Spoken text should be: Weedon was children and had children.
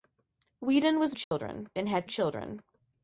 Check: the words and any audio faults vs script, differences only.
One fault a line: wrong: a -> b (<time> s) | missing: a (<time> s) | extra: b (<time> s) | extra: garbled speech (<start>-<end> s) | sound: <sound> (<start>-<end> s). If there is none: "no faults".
sound: dropout (1.2-1.3 s)